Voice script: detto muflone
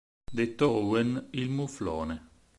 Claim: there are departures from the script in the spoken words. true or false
true